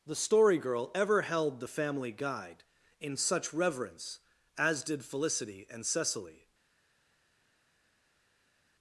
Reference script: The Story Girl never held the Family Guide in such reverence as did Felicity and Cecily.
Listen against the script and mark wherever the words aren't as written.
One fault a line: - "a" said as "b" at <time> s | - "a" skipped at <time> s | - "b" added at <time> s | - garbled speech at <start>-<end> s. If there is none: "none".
- "never" said as "ever" at 0.9 s